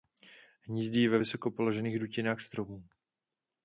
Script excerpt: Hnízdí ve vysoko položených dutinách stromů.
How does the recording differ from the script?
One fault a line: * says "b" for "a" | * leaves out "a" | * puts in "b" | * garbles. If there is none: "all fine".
all fine